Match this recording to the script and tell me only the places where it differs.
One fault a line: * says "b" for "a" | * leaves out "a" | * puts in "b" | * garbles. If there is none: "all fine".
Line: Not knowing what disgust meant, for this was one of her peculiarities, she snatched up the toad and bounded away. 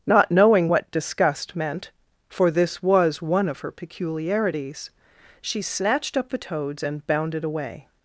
* says "toads" for "toad"